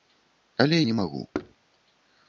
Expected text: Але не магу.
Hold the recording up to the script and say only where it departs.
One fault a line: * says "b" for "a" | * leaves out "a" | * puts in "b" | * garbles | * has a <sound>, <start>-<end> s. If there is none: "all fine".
* has a thud, 1.3-1.6 s